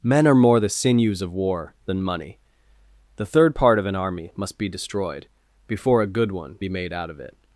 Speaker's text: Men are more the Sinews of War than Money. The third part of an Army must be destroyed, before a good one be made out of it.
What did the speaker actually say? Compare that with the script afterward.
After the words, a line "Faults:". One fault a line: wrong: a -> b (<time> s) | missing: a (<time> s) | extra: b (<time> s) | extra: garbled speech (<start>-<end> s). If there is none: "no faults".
Men are more the Sinews of War than Money. The third part of an Army must be destroyed, before a good one be made out of it.
Faults:
no faults